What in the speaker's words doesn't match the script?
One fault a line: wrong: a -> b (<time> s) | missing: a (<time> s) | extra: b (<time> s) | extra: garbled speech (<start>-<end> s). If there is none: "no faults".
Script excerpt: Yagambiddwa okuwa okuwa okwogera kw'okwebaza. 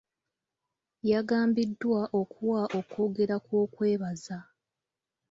missing: okuwa (2.6 s)